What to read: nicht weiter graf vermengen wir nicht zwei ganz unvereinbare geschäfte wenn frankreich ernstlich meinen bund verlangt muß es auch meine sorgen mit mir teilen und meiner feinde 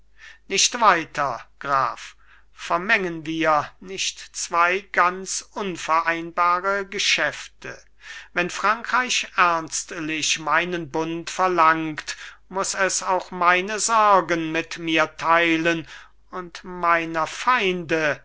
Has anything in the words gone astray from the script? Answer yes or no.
no